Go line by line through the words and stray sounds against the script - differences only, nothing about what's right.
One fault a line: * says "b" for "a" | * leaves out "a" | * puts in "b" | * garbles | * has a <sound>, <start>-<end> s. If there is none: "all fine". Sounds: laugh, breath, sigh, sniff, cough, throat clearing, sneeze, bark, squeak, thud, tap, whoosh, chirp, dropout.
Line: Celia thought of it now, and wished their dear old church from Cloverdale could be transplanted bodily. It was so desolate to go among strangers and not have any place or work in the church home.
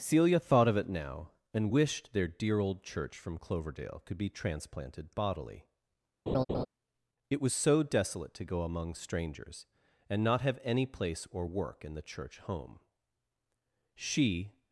* has a laugh, 6.3-6.7 s
* puts in "She"